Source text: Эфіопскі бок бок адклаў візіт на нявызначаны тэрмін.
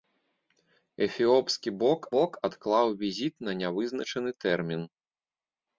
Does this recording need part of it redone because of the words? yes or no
no